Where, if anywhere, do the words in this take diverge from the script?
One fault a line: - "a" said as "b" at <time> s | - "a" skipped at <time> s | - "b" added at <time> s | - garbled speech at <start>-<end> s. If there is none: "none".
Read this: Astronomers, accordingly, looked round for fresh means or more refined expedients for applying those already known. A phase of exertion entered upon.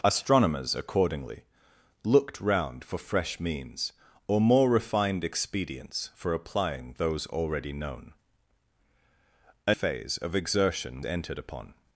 none